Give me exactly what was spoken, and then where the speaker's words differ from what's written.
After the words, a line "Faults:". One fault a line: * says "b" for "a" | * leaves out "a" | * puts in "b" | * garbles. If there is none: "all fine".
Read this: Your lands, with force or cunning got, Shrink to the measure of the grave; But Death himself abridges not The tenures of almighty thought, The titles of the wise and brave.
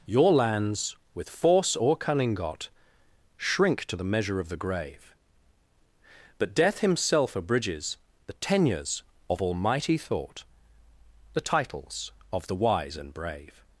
Your lands, with force or cunning got, Shrink to the measure of the grave; But Death himself abridges The tenures of almighty thought, The titles of the wise and brave.
Faults:
* leaves out "not"